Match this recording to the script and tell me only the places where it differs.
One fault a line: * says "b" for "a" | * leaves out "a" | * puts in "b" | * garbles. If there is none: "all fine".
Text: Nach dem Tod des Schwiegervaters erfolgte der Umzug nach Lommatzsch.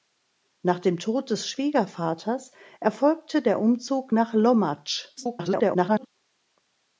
* garbles